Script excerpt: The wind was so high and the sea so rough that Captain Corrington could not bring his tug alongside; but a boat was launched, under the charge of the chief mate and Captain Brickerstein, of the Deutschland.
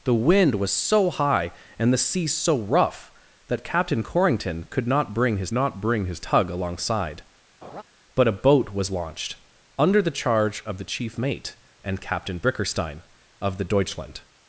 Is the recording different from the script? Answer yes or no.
yes